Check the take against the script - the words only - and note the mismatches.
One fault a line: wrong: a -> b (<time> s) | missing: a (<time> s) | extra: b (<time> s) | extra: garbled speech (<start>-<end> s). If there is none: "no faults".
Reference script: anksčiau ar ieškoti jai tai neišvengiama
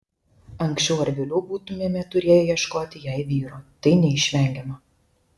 extra: vėliau būtumėme turėję (1.2 s)
extra: vyro (3.3 s)